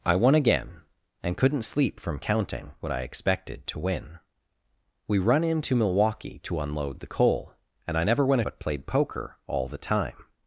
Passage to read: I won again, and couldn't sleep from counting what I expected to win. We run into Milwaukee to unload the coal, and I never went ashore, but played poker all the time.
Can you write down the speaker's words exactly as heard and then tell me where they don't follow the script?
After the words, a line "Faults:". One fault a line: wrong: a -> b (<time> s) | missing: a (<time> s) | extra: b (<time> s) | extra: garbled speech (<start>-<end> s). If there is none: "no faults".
I won again, and couldn't sleep from counting what I expected to win. We run into Milwaukee to unload the coal, and I never went but played poker all the time.
Faults:
missing: ashore (8.4 s)